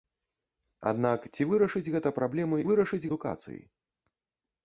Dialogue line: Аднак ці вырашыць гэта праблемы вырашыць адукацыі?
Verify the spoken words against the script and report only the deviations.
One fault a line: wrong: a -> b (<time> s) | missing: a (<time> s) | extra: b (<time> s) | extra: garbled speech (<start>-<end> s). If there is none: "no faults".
no faults